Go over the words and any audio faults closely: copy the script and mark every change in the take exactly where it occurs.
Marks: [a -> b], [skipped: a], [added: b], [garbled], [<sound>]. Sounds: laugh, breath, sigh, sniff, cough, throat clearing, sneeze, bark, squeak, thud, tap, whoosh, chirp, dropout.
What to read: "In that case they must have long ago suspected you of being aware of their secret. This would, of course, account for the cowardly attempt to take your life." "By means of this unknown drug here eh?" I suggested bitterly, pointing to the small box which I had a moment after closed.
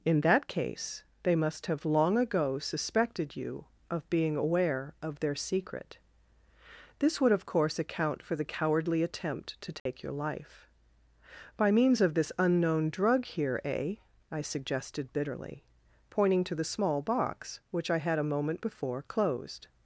"In that case they must have long ago suspected you of being aware of their secret. This would, of course, account for the cowardly attempt to take [dropout] your life." "By means of this unknown drug here eh?" I suggested bitterly, pointing to the small box which I had a moment [after -> before] closed.